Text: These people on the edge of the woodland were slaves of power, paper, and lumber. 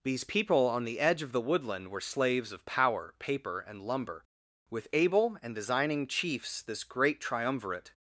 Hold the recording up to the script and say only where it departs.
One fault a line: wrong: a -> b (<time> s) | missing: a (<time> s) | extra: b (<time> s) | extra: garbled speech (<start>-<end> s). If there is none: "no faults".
extra: With able and designing chiefs this great triumvirate (4.7 s)